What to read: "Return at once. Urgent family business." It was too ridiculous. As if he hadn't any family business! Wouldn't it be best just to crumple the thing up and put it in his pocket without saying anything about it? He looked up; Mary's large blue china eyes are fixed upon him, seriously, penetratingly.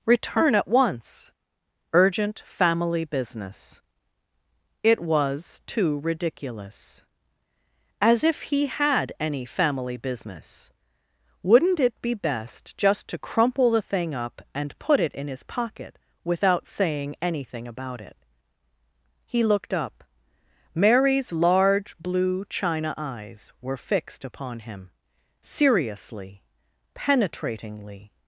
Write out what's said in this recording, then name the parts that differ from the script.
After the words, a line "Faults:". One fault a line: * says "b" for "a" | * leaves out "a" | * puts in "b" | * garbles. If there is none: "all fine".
"Return at once. Urgent family business." It was too ridiculous. As if he had any family business! Wouldn't it be best just to crumple the thing up and put it in his pocket without saying anything about it? He looked up; Mary's large blue china eyes were fixed upon him, seriously, penetratingly.
Faults:
* says "had" for "hadn't"
* says "were" for "are"